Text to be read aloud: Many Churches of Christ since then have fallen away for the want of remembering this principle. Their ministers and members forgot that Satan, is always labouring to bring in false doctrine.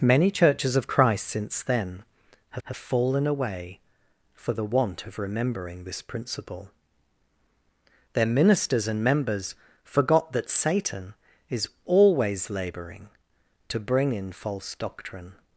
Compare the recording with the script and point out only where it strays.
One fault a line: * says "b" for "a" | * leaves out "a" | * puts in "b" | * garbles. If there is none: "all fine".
* puts in "have"